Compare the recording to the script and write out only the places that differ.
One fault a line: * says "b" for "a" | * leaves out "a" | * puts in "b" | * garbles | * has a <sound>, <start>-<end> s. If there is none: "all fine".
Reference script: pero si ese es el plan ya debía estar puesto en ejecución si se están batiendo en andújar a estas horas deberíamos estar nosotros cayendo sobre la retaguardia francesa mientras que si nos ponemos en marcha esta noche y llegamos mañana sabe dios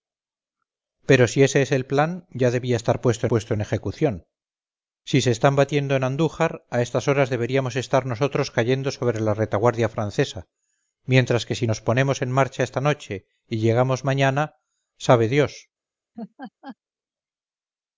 * puts in "puesto"
* has a laugh, 16.1-16.8 s